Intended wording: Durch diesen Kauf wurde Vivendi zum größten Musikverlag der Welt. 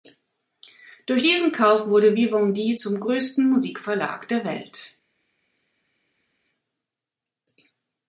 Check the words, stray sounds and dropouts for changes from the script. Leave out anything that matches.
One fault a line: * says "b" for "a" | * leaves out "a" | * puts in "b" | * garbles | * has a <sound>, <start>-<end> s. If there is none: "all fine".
all fine